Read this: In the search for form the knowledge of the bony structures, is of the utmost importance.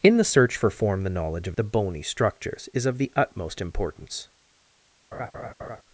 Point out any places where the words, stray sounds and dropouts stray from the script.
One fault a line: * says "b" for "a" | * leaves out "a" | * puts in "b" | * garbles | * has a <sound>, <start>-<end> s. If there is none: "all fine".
* has a laugh, 5.1-5.8 s